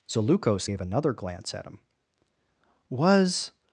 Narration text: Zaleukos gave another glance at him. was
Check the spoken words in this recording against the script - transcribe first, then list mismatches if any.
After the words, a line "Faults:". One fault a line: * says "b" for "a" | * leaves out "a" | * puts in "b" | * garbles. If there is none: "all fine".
Zaleukos gave another glance at him. was
Faults:
all fine